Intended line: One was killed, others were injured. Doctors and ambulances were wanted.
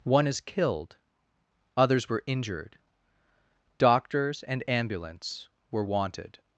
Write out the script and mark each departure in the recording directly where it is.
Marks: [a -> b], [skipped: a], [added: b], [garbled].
One [was -> is] killed, others were injured. Doctors and [ambulances -> ambulance] were wanted.